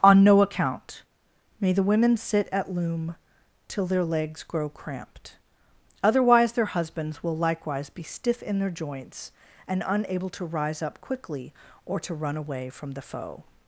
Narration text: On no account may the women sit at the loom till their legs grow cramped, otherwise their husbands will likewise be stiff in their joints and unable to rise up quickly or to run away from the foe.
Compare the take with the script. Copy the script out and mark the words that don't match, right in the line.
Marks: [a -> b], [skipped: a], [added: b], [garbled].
On no account may the women sit at [skipped: the] loom till their legs grow cramped, otherwise their husbands will likewise be stiff in their joints and unable to rise up quickly or to run away from the foe.